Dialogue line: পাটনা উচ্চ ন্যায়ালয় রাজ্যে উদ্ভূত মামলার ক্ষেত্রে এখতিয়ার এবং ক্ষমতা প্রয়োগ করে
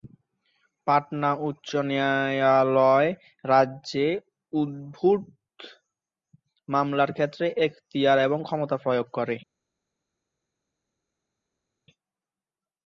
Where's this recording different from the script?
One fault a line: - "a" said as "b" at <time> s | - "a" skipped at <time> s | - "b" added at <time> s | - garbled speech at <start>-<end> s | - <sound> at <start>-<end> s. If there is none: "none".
none